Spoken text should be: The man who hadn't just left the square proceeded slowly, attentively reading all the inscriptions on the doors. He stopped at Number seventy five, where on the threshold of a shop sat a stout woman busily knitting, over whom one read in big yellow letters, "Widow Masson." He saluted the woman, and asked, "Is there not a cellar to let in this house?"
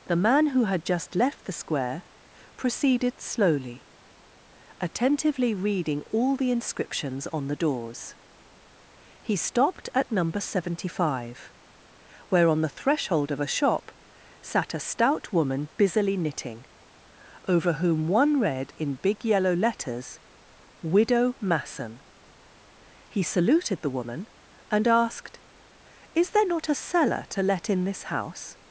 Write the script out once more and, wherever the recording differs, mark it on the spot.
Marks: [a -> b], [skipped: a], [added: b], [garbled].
The man who [hadn't -> had] just left the square proceeded slowly, attentively reading all the inscriptions on the doors. He stopped at Number seventy five, where on the threshold of a shop sat a stout woman busily knitting, over whom one read in big yellow letters, "Widow Masson." He saluted the woman, and asked, "Is there not a cellar to let in this house?"